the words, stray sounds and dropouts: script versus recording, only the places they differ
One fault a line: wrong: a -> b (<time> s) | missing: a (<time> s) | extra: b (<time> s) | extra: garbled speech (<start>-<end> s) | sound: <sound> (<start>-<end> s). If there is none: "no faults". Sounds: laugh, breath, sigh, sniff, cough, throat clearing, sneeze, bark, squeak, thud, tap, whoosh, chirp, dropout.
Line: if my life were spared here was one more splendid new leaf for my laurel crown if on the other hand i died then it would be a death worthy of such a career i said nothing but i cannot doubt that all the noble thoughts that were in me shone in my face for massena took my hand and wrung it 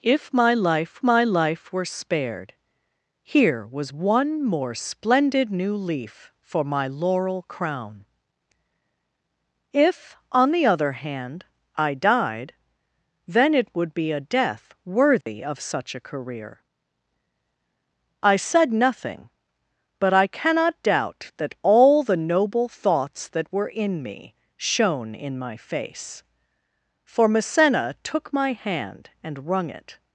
extra: my life (1.0 s)
sound: dropout (15.2-15.3 s)